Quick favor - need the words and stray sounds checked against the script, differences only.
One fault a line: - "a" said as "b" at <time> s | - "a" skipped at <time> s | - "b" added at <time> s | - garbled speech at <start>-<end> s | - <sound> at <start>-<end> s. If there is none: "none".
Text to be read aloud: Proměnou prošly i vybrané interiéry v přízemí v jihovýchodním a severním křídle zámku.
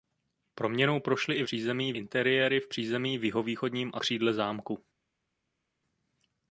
- "vybrané" said as "přízemí" at 1.4 s
- "severním" skipped at 4.0 s